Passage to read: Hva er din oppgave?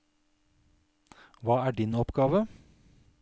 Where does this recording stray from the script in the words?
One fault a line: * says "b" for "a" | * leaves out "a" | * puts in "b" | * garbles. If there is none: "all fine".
all fine